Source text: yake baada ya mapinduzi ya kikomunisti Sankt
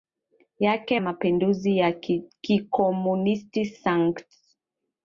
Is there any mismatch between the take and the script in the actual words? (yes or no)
yes